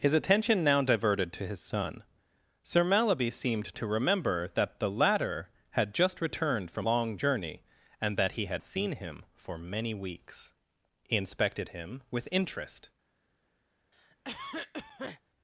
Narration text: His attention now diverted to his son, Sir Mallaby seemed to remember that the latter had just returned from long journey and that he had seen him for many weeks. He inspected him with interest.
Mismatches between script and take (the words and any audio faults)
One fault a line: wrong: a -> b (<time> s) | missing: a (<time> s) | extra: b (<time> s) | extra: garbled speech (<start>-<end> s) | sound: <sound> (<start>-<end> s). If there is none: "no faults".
sound: cough (13.9-15.2 s)